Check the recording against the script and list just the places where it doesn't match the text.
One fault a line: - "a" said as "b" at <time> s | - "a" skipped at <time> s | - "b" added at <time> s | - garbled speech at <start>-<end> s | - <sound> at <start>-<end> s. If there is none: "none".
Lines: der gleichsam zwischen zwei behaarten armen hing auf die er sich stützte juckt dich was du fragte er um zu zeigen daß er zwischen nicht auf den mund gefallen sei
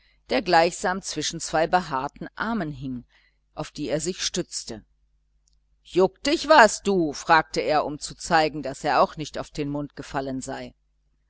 - "zwischen" said as "auch" at 9.0 s